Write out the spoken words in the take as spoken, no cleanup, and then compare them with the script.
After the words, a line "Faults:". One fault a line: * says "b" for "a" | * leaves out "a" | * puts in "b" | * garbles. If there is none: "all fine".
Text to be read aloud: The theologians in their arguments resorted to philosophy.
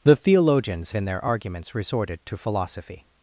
The theologians in their arguments resorted to philosophy.
Faults:
all fine